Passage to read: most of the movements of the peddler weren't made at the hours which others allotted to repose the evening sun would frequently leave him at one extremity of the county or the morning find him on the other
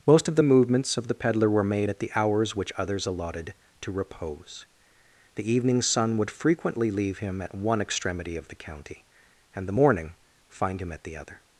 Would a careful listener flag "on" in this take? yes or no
yes